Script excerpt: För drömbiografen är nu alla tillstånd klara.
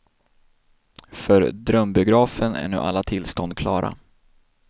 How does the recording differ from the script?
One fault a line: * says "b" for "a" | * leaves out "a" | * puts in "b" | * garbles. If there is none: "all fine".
all fine